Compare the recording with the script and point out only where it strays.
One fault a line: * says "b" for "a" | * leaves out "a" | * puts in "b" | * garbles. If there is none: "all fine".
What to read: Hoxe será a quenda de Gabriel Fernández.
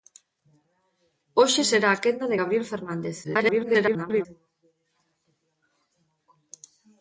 * garbles